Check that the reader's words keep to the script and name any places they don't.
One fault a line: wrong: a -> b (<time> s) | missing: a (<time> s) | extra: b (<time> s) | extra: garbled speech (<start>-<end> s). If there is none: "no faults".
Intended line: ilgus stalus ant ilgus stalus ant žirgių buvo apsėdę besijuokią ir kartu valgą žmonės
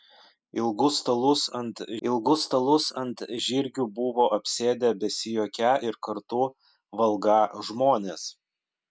no faults